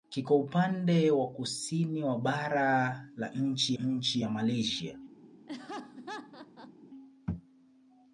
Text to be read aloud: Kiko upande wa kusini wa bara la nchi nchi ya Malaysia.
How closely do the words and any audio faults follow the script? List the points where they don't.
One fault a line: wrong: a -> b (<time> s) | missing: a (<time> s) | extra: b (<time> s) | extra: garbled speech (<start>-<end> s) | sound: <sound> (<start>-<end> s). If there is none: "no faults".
sound: laugh (5.5-6.7 s)